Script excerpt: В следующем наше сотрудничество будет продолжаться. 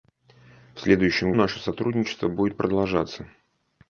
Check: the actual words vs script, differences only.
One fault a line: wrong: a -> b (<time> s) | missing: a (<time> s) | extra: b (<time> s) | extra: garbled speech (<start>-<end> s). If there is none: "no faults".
no faults